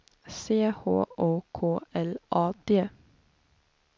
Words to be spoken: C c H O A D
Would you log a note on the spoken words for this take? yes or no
yes